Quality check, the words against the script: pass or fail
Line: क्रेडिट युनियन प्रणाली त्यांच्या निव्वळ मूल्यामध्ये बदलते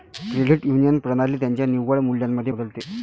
pass